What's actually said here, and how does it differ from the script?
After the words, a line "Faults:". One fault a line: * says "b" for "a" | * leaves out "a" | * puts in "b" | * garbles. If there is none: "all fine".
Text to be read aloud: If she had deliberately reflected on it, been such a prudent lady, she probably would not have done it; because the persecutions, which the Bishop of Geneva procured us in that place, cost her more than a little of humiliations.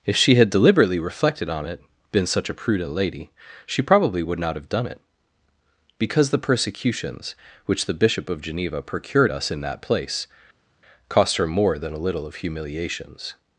If she had deliberately reflected on it, been such a prudent lady, she probably would not have done it; because the persecutions, which the Bishop of Geneva procured us in that place, cost her more than a little of humiliations.
Faults:
all fine